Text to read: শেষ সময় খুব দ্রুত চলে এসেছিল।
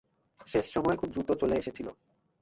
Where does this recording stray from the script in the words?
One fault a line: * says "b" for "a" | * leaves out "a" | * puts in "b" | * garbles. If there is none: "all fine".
all fine